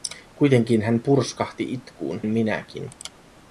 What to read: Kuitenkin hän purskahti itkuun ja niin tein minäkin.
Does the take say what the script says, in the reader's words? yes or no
no